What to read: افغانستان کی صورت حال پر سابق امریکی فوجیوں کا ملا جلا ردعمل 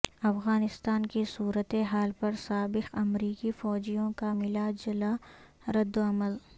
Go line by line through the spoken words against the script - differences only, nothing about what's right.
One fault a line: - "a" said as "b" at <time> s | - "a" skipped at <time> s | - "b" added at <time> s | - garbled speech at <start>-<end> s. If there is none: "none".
none